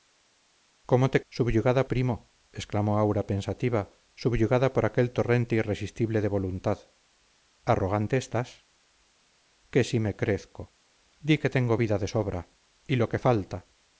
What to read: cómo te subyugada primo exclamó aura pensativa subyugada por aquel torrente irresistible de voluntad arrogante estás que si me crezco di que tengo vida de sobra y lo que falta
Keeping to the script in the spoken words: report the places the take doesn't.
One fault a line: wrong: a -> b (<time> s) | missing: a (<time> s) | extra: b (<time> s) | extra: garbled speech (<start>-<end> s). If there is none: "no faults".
no faults